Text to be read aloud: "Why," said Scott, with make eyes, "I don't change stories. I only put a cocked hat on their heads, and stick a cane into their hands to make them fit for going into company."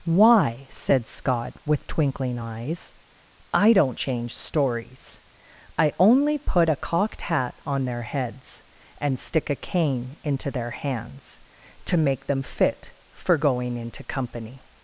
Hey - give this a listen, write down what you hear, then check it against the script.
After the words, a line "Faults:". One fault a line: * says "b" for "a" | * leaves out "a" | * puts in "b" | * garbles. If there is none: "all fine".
"Why," said Scott, with twinkling eyes, "I don't change stories. I only put a cocked hat on their heads, and stick a cane into their hands to make them fit for going into company."
Faults:
* says "twinkling" for "make"